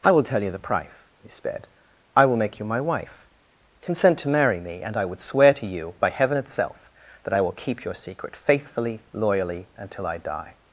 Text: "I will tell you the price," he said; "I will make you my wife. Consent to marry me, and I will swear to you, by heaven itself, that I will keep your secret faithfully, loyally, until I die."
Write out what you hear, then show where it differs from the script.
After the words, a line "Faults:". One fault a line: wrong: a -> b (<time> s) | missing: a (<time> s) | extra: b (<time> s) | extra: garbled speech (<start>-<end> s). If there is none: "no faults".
"I will tell you the price," he sped; "I will make you my wife. Consent to marry me, and I would swear to you, by heaven itself, that I will keep your secret faithfully, loyally, until I die."
Faults:
wrong: said -> sped (1.3 s)
wrong: will -> would (5.0 s)